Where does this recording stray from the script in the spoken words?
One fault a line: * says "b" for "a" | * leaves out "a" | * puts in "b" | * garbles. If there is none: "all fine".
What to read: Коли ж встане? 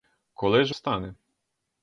all fine